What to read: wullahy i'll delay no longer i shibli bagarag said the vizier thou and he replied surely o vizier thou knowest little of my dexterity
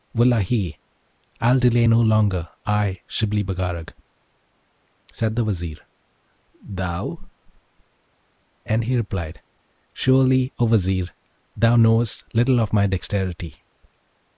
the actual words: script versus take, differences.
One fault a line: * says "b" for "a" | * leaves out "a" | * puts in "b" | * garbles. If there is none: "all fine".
all fine